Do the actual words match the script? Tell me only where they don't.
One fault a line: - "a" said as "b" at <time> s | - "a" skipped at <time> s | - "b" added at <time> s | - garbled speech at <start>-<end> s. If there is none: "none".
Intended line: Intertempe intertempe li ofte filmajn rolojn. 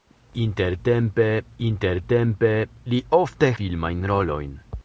none